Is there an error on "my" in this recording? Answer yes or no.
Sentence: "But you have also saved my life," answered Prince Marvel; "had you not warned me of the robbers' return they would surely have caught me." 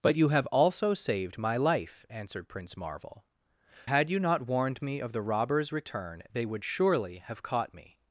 no